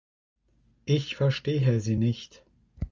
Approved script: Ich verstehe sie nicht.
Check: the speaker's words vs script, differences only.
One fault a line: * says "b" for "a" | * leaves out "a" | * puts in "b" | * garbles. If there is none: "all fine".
all fine